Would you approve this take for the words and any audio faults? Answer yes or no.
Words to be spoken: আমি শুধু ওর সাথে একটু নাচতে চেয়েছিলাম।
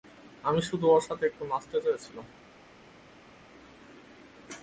yes